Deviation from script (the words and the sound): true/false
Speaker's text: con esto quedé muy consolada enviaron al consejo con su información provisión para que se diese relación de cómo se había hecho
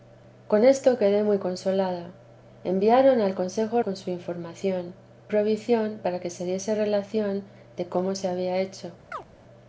true